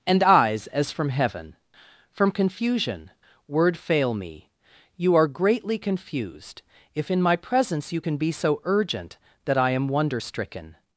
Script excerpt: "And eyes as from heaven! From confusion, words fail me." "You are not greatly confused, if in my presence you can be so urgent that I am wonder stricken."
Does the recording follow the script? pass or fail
fail